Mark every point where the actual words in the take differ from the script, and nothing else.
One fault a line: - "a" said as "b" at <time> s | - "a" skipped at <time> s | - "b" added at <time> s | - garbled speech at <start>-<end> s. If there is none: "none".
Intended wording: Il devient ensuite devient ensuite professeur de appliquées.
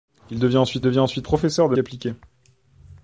none